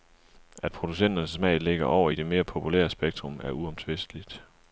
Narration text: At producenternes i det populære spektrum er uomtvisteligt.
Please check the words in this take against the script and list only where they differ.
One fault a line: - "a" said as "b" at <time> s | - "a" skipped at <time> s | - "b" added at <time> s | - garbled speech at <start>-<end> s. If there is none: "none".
- "smag ligger over" added at 1.3 s
- "mere" added at 2.3 s